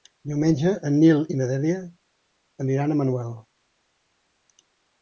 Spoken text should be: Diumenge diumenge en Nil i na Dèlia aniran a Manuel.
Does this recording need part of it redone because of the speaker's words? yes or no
yes